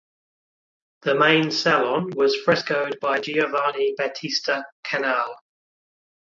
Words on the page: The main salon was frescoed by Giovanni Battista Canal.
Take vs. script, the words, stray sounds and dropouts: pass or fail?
pass